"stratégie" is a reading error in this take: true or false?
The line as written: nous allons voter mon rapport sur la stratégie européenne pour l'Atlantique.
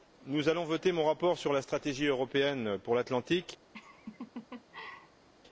false